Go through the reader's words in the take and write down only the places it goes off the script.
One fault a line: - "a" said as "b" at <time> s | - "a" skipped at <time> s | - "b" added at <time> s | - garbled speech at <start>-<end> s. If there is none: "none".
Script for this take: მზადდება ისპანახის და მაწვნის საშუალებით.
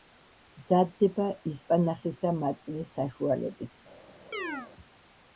none